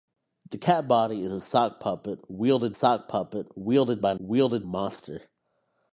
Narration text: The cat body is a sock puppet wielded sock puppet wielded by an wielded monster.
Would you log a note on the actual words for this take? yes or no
no